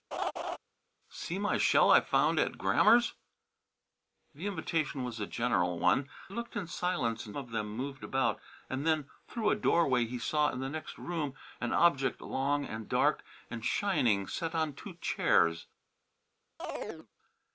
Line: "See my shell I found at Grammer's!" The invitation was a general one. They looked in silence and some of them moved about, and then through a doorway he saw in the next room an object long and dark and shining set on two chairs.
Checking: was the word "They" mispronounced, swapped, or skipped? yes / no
yes